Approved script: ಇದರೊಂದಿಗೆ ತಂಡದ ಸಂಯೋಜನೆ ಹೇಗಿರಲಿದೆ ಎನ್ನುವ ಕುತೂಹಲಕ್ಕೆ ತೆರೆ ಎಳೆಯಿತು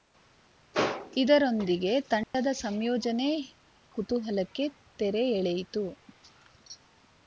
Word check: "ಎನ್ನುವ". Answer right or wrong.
wrong